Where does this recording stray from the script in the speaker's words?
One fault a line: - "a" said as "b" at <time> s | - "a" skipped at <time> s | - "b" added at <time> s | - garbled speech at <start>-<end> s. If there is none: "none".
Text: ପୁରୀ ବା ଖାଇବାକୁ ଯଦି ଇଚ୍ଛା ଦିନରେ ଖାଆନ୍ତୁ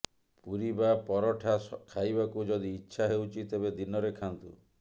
- "ପରଠା" added at 1.1 s
- "ହେଉଛି ତେବେ" added at 3.1 s